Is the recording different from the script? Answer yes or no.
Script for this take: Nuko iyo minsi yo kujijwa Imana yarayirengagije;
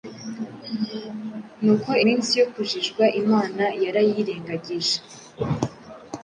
yes